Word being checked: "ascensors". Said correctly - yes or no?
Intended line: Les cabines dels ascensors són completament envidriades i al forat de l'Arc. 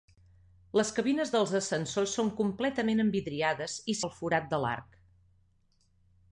yes